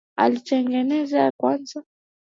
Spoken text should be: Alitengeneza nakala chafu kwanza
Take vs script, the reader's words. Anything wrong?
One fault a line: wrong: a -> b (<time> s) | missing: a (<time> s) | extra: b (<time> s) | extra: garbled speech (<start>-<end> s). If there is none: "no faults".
missing: nakala chafu (1.3 s)